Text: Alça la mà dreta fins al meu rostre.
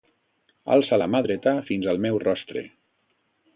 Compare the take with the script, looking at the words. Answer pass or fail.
pass